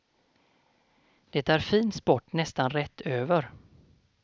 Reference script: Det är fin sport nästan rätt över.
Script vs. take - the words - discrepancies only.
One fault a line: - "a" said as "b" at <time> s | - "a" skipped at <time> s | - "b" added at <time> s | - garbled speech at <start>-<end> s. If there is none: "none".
none